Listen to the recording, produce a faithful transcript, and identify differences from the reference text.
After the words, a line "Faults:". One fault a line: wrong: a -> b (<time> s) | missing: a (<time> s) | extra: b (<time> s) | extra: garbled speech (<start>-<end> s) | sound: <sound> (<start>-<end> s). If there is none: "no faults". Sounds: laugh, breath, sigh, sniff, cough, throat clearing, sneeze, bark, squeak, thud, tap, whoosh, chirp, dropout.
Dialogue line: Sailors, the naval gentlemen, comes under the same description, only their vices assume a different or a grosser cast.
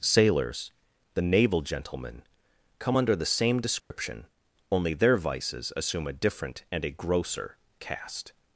Sailors, the naval gentlemen, come under the same description, only their vices assume a different and a grosser cast.
Faults:
wrong: comes -> come (2.8 s)
sound: dropout (3.8-3.9 s)
wrong: or -> and (6.7 s)